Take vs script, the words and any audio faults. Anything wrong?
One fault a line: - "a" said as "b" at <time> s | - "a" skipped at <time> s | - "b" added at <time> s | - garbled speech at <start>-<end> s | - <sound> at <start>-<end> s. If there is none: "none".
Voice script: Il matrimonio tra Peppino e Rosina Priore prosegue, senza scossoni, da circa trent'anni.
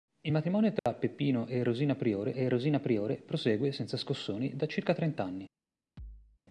- dropout at 0.8-0.9 s
- "e Rosina Priore" added at 2.3 s
- thud at 6.0-6.4 s